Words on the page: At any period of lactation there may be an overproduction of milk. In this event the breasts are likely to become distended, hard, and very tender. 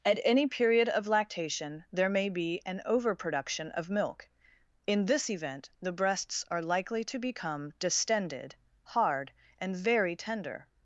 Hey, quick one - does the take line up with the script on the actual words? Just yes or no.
yes